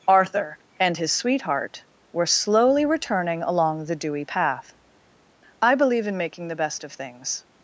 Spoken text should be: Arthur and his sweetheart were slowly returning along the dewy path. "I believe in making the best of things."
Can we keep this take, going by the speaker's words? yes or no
yes